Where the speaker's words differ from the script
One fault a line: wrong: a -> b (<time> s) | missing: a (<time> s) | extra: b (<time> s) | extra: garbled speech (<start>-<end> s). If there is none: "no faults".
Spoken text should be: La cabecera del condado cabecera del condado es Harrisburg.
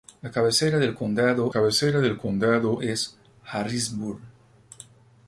no faults